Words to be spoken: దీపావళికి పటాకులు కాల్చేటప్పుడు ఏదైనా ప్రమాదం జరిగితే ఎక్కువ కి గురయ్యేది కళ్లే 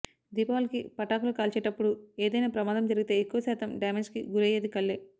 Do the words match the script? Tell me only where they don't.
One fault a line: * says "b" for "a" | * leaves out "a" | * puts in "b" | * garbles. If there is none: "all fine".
* puts in "శాతం డ్యామేజ్"